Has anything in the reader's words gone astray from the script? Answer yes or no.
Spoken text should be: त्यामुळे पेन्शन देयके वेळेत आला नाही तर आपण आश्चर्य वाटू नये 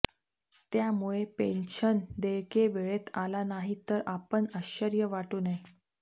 no